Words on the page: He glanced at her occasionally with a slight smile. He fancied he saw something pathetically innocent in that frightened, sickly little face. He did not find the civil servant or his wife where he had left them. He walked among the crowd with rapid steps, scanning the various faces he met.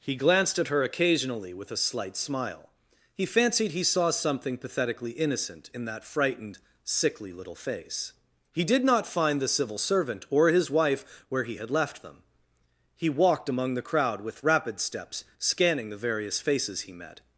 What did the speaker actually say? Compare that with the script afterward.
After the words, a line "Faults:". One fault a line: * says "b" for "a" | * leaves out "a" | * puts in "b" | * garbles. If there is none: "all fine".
He glanced at her occasionally with a slight smile. He fancied he saw something pathetically innocent in that frightened, sickly little face. He did not find the civil servant or his wife where he had left them. He walked among the crowd with rapid steps, scanning the various faces he met.
Faults:
all fine